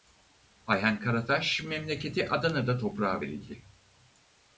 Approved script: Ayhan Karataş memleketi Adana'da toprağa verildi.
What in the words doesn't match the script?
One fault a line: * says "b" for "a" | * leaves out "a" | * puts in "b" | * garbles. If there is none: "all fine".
all fine